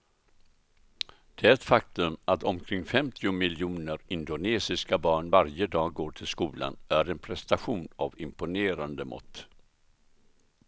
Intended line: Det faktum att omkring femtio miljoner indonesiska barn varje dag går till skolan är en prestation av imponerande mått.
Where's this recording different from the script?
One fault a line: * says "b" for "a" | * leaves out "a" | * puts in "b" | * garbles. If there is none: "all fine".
all fine